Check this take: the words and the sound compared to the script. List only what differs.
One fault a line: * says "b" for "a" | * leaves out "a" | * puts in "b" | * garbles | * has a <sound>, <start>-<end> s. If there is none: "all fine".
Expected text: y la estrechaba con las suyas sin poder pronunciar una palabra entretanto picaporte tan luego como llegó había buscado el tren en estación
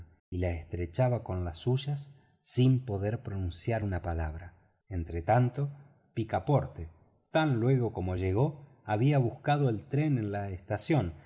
* puts in "la"